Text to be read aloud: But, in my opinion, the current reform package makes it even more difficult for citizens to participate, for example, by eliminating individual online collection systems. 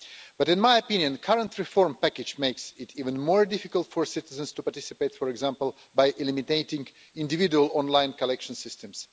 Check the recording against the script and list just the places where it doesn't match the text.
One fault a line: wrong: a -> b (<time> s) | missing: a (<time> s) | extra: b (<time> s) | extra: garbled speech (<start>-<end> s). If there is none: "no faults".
no faults